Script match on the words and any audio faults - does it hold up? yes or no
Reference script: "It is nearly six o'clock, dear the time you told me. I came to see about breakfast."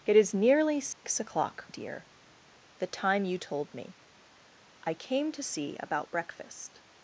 no